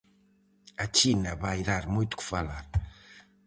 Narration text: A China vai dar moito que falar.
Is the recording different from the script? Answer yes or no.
no